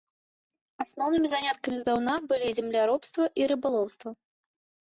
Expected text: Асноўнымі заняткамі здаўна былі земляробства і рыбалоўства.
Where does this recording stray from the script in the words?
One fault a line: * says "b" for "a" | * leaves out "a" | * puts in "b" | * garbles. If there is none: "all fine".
all fine